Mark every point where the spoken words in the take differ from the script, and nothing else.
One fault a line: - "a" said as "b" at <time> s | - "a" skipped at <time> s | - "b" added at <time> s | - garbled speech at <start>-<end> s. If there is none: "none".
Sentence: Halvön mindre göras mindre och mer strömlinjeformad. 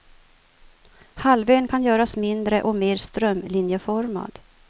- "mindre" said as "kan" at 1.6 s